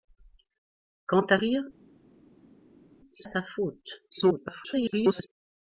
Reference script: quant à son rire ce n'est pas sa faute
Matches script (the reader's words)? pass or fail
fail